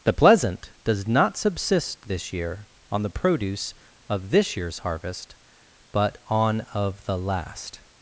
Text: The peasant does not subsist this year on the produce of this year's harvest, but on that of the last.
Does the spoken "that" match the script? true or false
false